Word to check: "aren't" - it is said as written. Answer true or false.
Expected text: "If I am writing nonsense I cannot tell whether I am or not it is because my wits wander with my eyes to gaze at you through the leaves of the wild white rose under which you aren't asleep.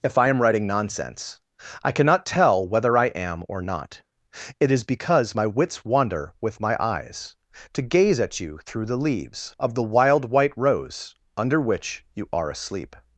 false